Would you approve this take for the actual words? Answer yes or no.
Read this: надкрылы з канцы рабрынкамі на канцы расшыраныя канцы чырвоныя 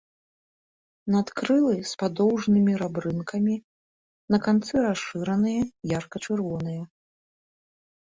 no